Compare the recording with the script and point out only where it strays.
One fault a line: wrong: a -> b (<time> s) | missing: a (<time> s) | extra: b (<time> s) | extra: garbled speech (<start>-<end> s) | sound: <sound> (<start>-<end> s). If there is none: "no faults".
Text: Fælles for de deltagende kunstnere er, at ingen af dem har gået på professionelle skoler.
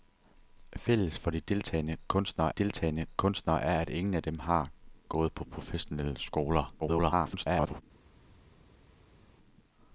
extra: deltagende kunstnere (2.5 s)
extra: garbled speech (6.8-7.8 s)